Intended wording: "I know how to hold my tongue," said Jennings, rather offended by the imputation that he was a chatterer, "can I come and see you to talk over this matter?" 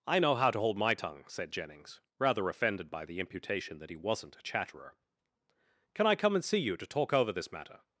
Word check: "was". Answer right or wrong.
wrong